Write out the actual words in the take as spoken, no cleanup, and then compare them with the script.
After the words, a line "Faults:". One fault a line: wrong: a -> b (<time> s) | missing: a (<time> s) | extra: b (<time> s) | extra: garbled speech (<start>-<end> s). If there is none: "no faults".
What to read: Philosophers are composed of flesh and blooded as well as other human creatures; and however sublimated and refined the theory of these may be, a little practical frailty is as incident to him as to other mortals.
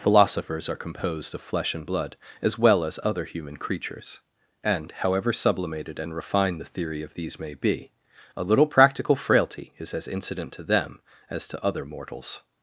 Philosophers are composed of flesh and blood as well as other human creatures; and however sublimated and refined the theory of these may be, a little practical frailty is as incident to them as to other mortals.
Faults:
wrong: blooded -> blood (1.9 s)
wrong: him -> them (10.6 s)